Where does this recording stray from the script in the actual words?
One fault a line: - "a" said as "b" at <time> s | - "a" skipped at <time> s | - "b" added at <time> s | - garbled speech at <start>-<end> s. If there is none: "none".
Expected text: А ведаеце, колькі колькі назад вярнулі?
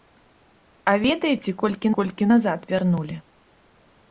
none